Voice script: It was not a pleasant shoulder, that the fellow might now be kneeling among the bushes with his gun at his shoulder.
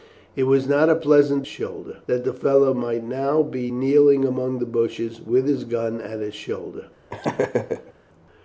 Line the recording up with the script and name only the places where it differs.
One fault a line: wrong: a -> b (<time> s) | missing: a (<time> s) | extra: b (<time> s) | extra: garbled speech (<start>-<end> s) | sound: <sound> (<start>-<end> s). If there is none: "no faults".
sound: laugh (7.1-7.9 s)